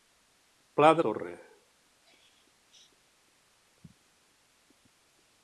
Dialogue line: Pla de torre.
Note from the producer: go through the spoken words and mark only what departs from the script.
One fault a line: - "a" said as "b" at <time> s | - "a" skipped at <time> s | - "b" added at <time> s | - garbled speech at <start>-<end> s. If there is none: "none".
none